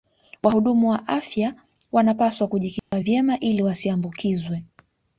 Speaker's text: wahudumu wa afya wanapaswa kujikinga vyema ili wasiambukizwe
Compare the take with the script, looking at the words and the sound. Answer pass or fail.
fail